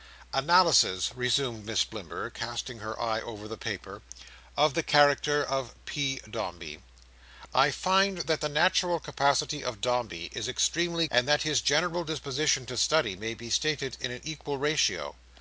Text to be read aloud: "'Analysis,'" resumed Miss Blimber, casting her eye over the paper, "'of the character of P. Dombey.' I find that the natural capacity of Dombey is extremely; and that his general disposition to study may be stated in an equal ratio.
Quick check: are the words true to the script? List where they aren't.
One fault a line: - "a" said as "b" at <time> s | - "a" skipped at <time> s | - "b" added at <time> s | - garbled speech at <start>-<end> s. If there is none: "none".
none